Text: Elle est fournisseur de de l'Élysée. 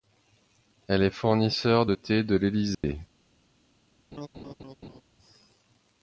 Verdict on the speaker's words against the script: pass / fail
fail